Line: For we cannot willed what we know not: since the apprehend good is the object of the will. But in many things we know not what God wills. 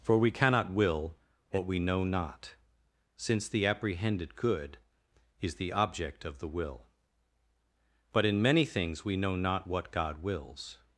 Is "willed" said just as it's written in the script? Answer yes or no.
no